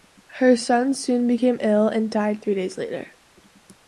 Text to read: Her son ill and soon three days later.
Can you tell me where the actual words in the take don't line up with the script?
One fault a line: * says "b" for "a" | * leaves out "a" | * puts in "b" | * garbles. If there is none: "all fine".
* puts in "soon became"
* says "died" for "soon"